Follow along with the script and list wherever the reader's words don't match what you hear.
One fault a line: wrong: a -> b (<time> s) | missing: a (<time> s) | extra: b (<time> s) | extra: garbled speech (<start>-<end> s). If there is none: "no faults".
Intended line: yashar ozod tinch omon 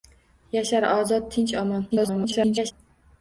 extra: garbled speech (1.9-2.7 s)